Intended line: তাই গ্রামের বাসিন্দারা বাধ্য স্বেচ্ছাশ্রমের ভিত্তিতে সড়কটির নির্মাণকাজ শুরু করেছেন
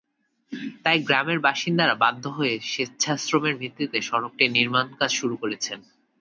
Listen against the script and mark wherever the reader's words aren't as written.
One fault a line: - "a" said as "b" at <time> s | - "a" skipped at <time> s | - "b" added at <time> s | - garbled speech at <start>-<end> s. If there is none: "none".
- "হয়ে" added at 2.3 s